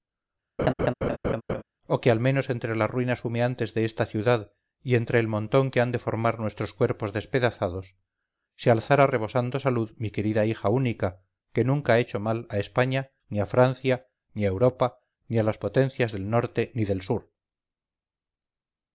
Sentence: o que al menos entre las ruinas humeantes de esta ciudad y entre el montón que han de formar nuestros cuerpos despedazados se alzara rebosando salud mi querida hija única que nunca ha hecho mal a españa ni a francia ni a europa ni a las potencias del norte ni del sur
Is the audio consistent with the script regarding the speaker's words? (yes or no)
yes